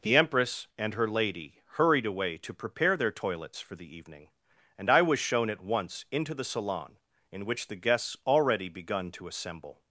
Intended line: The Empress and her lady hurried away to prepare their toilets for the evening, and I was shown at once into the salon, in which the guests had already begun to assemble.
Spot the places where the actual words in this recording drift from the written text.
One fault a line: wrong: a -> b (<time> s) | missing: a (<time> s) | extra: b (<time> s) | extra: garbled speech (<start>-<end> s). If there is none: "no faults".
missing: had (8.2 s)